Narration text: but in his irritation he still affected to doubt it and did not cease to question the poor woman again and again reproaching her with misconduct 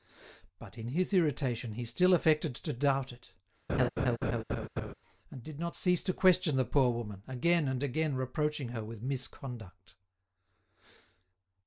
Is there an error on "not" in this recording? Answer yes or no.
no